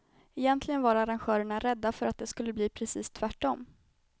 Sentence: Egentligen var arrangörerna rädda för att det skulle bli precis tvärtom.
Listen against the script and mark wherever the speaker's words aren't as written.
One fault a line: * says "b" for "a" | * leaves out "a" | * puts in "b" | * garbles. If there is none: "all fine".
all fine